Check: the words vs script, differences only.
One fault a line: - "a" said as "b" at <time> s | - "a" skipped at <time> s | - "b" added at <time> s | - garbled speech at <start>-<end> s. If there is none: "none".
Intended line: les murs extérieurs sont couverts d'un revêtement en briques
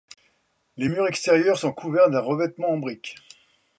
none